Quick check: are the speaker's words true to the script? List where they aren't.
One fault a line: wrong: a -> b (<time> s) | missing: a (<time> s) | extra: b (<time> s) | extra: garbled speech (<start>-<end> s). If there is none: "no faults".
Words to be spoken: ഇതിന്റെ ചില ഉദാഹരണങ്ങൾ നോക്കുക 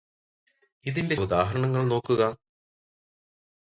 missing: ചില (1.1 s)